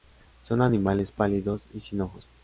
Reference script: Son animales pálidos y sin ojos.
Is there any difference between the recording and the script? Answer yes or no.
no